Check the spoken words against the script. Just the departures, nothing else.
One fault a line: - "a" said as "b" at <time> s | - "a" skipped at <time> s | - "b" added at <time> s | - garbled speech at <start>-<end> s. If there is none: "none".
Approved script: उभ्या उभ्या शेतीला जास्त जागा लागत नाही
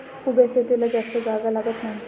- "उभ्या" skipped at 0.5 s